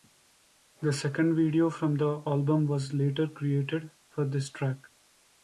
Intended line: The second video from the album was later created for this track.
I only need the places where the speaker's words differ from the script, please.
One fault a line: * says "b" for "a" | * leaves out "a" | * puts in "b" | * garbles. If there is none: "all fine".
all fine